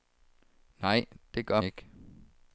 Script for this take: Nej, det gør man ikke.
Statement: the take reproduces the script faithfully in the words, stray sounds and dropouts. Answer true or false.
false